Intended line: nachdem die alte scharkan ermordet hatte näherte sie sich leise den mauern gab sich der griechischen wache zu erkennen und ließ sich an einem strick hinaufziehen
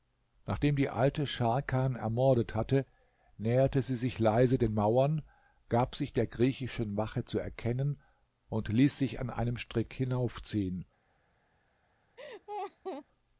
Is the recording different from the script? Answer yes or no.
no